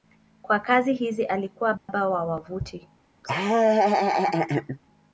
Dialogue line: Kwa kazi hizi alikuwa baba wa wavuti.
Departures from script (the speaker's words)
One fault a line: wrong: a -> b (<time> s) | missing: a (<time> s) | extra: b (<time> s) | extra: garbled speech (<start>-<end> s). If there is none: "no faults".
no faults